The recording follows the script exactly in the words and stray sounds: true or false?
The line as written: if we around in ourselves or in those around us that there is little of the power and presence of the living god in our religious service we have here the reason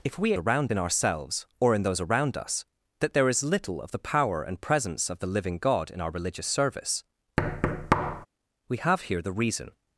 false